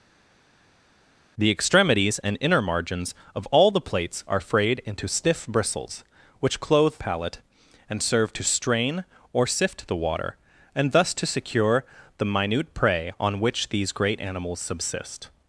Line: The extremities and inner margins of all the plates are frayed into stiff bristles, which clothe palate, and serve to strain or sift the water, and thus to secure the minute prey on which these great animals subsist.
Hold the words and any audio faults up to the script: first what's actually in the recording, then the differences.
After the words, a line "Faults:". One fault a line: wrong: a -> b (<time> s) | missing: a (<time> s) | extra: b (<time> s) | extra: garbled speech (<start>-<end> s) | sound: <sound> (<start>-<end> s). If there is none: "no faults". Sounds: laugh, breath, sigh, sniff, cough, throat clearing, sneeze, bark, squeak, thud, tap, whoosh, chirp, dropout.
The extremities and inner margins of all the plates are frayed into stiff bristles, which clothe palate, and serve to strain or sift the water, and thus to secure the minute prey on which these great animals subsist.
Faults:
no faults